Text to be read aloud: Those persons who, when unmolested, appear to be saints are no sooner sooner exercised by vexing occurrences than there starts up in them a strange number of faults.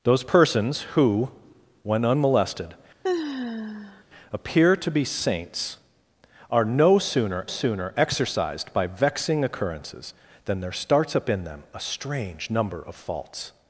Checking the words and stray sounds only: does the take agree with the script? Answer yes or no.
no